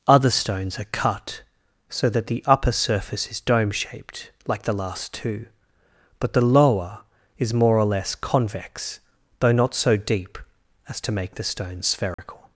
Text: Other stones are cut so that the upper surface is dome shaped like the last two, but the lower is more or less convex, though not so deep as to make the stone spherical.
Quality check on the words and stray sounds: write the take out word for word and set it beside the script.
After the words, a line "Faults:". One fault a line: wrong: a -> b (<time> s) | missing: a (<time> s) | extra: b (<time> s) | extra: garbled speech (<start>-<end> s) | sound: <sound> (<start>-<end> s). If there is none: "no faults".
Other stones are cut so that the upper surface is dome shaped like the last two, but the lower is more or less convex, though not so deep as to make the stone spherical.
Faults:
sound: dropout (12.1-12.2 s)